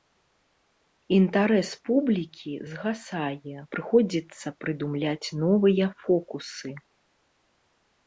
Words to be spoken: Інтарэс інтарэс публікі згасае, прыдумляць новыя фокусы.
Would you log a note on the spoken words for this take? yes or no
yes